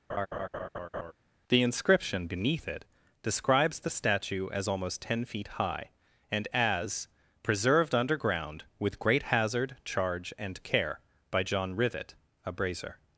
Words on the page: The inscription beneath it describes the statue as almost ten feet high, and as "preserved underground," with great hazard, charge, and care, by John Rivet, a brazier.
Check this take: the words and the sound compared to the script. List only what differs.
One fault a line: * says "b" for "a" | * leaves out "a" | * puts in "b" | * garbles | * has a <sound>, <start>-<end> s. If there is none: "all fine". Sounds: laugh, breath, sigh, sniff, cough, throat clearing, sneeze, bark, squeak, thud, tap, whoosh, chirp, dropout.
* has a laugh, 0.1-1.1 s